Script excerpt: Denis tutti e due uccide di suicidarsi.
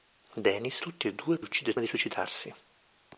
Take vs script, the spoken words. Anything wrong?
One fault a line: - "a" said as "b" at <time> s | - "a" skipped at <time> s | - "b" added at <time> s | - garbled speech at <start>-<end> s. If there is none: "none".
none